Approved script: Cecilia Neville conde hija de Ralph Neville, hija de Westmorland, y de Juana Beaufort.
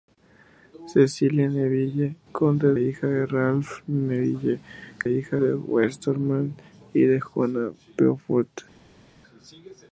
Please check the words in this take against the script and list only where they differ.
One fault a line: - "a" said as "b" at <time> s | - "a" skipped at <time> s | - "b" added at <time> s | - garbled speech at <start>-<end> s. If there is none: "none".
none